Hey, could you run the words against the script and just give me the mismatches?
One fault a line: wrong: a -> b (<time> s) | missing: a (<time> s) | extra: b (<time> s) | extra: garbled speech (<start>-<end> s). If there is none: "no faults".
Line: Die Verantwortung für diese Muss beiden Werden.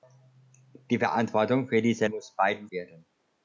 no faults